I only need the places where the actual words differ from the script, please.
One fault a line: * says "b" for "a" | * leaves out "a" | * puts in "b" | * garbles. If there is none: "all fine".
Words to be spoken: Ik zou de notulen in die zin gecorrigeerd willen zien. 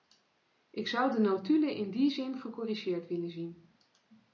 all fine